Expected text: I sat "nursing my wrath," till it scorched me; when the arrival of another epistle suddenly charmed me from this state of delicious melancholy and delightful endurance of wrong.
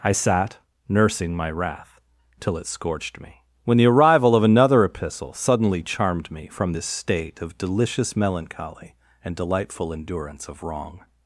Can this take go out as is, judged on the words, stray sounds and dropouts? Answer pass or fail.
pass